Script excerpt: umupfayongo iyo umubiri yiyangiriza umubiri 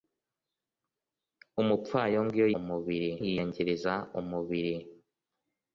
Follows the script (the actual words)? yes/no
yes